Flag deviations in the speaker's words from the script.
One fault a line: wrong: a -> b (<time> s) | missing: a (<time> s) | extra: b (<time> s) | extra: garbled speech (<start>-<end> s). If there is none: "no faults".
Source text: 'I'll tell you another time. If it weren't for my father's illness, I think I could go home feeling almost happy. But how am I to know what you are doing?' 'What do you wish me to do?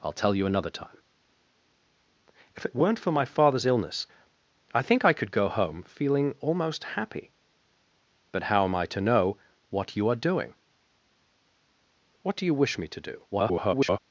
extra: garbled speech (13.3-14.0 s)